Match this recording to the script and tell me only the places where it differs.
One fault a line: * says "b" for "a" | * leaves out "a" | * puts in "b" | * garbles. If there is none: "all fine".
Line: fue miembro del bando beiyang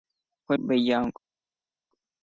* leaves out "miembro del bando"